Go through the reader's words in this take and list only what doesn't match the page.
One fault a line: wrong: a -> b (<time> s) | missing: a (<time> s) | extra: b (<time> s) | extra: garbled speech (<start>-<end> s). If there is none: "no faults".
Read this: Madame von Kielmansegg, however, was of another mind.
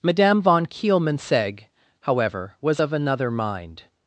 no faults